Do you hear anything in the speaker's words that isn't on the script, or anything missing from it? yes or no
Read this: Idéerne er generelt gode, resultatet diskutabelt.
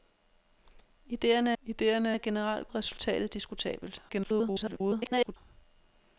yes